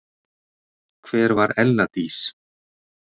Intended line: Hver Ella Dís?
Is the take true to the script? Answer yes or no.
no